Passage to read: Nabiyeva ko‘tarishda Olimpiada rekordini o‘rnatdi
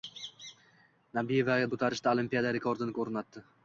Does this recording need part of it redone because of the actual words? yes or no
no